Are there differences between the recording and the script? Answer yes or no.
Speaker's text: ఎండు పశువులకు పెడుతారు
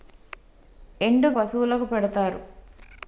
no